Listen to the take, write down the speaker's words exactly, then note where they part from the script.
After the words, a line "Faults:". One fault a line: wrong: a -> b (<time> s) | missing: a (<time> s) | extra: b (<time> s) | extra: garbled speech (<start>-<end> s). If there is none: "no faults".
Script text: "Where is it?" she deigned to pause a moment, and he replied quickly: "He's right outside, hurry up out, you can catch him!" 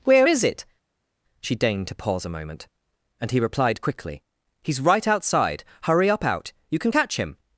"Where is it?" she deigned to pause a moment, and he replied quickly: "He's right outside, hurry up out, you can catch him!"
Faults:
no faults